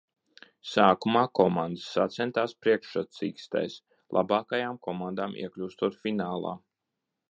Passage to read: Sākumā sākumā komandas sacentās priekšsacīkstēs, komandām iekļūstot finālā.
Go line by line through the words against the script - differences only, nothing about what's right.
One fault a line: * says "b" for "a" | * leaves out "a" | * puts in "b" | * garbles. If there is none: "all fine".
* leaves out "sākumā"
* puts in "labākajām"